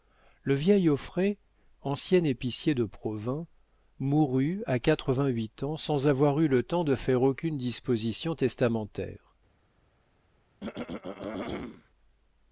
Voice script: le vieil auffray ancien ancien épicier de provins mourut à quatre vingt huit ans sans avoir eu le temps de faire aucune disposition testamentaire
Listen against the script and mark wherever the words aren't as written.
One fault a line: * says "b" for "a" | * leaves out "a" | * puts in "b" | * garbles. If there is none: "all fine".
* leaves out "ancien"